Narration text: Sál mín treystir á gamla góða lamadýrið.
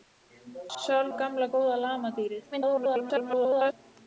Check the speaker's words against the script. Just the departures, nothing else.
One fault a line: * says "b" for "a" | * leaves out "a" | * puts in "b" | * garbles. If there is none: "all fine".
* leaves out "mín treystir"
* garbles